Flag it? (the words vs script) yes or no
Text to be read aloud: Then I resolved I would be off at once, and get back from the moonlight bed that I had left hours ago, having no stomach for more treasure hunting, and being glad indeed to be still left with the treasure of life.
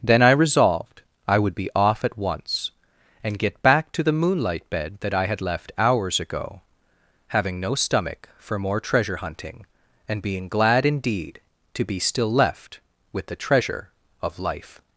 yes